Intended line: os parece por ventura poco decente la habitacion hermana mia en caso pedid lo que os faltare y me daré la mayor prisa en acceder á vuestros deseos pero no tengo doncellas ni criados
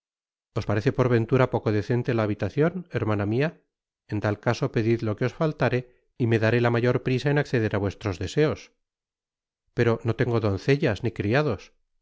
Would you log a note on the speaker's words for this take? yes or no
yes